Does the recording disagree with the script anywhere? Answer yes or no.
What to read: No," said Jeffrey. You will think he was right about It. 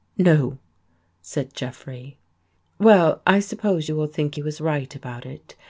yes